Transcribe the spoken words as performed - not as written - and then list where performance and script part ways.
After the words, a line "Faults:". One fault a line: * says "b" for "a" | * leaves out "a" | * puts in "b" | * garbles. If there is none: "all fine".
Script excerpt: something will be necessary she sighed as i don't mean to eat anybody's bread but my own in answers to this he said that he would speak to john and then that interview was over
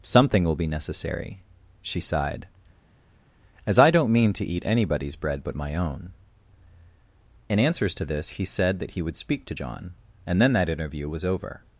something will be necessary she sighed as i don't mean to eat anybody's bread but my own in answers to this he said that he would speak to john and then that interview was over
Faults:
all fine